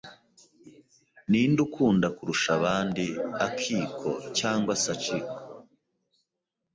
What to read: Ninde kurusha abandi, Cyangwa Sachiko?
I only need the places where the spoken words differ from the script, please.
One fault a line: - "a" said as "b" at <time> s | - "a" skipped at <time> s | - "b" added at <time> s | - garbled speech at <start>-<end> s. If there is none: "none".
- "ukunda" added at 1.7 s
- "Akiko" added at 3.5 s